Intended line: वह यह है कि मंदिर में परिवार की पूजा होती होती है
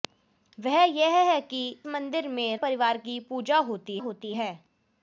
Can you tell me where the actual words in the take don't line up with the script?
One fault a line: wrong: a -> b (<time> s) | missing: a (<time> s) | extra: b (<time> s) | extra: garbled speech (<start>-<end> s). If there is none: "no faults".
no faults